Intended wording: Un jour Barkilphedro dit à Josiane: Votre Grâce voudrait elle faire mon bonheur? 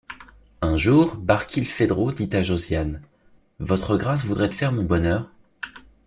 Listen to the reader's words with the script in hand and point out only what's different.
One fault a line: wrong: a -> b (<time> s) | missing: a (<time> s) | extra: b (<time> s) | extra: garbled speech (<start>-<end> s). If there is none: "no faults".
missing: elle (4.5 s)